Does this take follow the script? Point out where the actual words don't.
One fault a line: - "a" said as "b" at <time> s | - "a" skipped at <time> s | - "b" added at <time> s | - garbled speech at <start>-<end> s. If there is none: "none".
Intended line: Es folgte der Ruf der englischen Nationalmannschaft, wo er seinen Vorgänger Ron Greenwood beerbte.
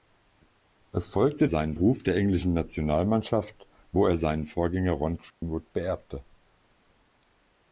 - "der" said as "seinen" at 1.4 s